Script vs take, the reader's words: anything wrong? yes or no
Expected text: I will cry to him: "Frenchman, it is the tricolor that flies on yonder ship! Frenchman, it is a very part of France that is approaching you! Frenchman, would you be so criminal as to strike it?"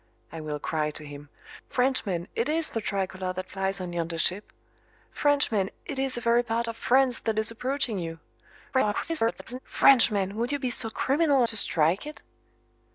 yes